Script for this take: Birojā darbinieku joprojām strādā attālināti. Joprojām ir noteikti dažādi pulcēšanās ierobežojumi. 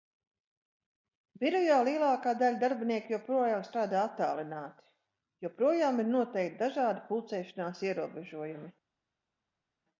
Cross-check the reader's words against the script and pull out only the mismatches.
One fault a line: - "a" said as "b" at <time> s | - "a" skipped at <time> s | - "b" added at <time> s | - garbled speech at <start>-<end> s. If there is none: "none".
- "lielākā daļa" added at 1.9 s